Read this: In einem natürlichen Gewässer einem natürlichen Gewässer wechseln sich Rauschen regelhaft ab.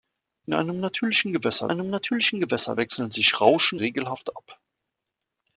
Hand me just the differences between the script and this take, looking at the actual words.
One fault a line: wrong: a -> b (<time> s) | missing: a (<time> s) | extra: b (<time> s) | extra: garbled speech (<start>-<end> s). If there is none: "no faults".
no faults